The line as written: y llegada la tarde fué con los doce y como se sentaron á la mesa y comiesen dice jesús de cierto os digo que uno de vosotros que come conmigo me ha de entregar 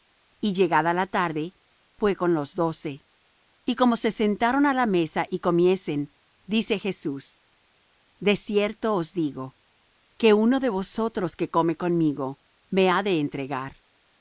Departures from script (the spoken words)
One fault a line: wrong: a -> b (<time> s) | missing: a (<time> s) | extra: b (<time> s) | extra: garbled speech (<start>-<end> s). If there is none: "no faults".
no faults